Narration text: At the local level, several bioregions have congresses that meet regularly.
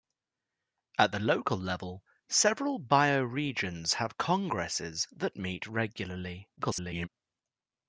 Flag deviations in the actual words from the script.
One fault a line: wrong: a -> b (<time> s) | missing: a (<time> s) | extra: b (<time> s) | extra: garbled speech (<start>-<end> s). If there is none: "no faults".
extra: garbled speech (6.6-7.1 s)